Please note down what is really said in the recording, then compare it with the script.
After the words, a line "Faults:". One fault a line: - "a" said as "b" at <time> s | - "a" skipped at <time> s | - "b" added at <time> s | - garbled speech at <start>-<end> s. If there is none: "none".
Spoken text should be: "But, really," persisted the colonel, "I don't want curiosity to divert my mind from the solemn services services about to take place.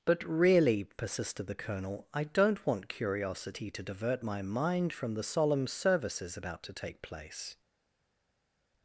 "But, really," persisted the colonel, "I don't want curiosity to divert my mind from the solemn services about to take place.
Faults:
- "services" skipped at 6.4 s